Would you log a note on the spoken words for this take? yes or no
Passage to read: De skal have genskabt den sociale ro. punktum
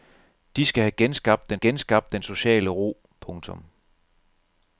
yes